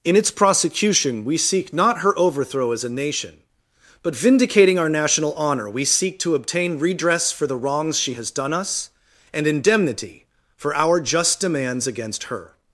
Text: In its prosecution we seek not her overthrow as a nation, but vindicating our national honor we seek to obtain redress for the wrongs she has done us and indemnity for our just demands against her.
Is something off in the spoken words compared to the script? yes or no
no